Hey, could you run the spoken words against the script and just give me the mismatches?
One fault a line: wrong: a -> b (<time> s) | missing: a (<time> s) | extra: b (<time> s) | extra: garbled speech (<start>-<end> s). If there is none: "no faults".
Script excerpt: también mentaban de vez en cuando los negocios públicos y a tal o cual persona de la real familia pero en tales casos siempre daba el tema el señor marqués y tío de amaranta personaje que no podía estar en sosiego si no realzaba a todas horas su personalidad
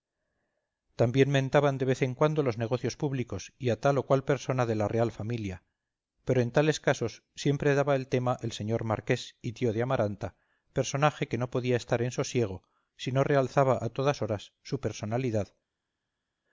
no faults